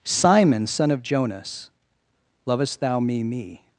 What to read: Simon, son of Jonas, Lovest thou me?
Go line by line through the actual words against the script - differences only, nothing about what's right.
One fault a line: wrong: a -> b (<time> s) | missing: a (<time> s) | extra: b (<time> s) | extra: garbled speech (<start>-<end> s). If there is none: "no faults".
extra: me (3.2 s)